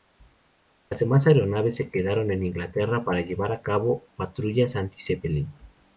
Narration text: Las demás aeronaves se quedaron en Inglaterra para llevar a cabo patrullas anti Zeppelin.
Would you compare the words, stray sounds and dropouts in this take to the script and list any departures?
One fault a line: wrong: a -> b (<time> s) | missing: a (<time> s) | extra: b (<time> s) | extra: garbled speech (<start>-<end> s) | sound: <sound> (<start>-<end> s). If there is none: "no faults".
no faults